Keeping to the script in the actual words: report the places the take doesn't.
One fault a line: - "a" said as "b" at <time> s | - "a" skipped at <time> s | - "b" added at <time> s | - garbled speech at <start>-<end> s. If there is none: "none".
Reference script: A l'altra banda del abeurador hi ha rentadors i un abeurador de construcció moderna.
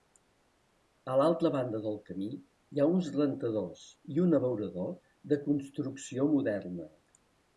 - "abeurador" said as "camí" at 2.1 s
- "uns" added at 2.9 s